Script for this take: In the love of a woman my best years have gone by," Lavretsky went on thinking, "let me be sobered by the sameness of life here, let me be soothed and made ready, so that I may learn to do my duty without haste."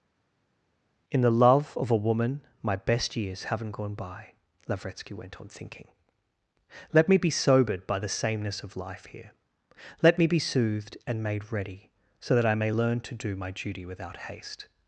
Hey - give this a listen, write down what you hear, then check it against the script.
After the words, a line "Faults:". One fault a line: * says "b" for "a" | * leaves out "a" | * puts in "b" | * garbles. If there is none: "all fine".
In the love of a woman my best years haven't gone by," Lavretsky went on thinking, "let me be sobered by the sameness of life here, let me be soothed and made ready, so that I may learn to do my duty without haste."
Faults:
* says "haven't" for "have"